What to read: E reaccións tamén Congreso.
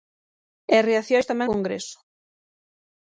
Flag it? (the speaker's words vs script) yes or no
no